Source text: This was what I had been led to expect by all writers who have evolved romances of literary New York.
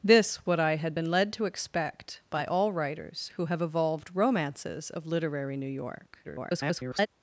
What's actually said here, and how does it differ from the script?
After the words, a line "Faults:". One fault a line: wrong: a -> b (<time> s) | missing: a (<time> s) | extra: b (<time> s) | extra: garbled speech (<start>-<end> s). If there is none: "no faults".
This what I had been led to expect by all writers who have evolved romances of literary New York. [garbled]
Faults:
missing: was (0.4 s)
extra: garbled speech (6.2-7.1 s)